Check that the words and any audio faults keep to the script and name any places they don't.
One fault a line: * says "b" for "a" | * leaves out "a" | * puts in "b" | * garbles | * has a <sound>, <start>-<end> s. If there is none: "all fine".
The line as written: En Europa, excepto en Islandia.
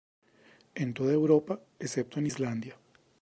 * puts in "toda"